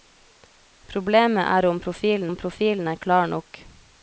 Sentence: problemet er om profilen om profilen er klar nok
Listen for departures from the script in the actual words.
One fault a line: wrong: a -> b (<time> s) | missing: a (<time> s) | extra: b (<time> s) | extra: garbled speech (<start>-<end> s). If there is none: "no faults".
no faults